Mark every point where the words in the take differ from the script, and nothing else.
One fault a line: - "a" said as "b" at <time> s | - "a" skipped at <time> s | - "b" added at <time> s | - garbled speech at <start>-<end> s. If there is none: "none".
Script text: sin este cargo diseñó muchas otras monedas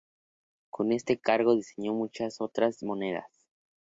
- "sin" said as "con" at 0.7 s